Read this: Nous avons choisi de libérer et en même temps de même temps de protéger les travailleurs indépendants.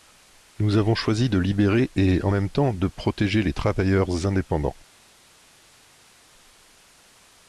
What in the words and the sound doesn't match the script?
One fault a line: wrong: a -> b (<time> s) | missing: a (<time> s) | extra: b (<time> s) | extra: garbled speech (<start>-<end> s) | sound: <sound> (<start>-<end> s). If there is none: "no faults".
missing: même temps de (2.9 s)